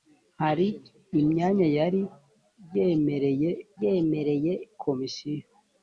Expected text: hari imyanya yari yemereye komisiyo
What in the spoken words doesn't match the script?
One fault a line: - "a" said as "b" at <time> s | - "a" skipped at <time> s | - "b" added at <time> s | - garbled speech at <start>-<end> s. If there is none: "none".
- "yemereye" added at 3.8 s